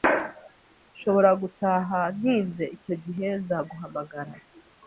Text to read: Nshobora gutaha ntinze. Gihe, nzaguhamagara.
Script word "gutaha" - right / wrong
right